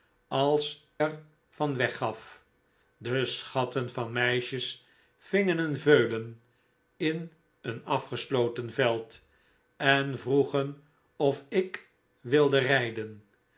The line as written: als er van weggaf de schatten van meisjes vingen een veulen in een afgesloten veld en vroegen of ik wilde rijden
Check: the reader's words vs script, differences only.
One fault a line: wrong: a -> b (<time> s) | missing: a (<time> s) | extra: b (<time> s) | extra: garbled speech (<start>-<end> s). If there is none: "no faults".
no faults